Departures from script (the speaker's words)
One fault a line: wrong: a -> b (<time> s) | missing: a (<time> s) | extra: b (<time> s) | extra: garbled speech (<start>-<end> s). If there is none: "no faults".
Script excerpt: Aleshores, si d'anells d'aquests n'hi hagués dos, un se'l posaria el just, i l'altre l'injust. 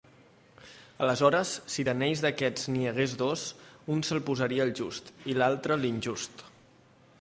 no faults